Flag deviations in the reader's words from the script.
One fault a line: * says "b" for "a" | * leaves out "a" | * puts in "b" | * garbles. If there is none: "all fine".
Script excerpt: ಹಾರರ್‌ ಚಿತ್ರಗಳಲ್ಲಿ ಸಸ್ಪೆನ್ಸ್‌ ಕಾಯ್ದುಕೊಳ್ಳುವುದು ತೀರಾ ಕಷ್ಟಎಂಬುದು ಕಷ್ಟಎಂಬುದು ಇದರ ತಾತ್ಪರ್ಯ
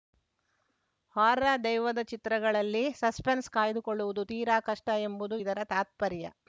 * puts in "ದೆವ್ವದ"
* leaves out "ಕಷ್ಟಎಂಬುದು"